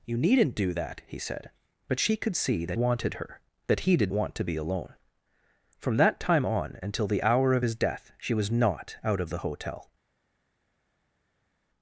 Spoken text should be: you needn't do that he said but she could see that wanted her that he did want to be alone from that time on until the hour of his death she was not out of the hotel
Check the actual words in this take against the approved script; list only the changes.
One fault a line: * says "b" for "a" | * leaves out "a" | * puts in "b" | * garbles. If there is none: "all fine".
all fine